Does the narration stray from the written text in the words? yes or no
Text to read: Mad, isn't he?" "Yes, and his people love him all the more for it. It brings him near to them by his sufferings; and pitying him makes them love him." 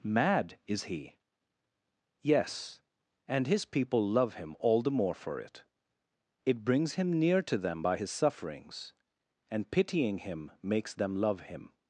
yes